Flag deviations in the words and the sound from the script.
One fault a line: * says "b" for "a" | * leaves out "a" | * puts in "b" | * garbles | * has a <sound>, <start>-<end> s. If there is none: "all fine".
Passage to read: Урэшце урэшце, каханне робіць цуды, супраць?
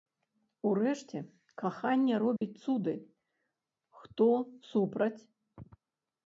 * leaves out "урэшце"
* has a dropout, 2.4-2.4 s
* puts in "хто"